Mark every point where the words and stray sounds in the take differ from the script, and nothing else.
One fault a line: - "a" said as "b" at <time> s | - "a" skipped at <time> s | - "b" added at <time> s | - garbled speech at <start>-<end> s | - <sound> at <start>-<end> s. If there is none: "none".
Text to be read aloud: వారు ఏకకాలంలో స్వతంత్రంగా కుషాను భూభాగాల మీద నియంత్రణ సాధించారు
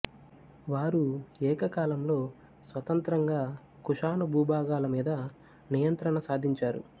none